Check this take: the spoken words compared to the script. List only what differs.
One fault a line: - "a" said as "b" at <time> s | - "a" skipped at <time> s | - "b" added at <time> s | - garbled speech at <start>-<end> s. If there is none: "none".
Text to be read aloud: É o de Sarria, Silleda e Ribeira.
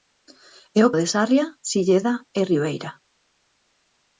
none